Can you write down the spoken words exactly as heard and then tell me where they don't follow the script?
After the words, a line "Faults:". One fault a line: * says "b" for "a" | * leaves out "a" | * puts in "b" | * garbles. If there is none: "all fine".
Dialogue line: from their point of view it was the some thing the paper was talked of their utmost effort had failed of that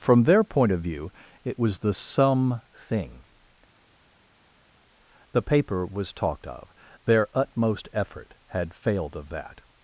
from their point of view it was the some thing the paper was talked of their utmost effort had failed of that
Faults:
all fine